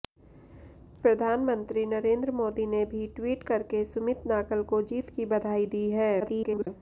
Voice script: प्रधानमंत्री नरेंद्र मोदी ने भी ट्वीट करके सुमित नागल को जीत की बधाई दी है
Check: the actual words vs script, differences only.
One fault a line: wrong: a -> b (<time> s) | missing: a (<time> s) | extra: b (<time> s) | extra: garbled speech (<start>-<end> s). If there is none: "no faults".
extra: garbled speech (6.2-6.7 s)